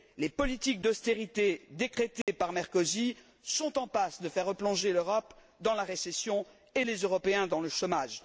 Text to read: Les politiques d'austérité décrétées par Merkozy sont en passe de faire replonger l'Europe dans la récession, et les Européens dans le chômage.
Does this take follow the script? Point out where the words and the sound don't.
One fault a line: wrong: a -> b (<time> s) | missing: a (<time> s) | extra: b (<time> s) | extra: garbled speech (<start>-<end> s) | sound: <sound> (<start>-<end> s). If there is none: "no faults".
sound: dropout (2.2-2.3 s)